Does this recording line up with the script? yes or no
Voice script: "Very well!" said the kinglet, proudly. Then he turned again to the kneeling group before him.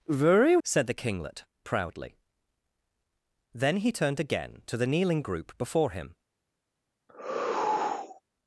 no